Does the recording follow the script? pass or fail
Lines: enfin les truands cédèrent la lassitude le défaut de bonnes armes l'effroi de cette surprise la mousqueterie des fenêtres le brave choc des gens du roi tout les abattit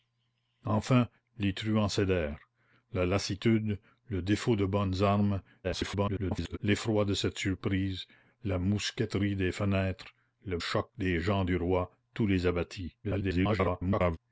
fail